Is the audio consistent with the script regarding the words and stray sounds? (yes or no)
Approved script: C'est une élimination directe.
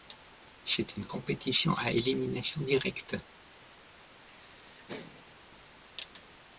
no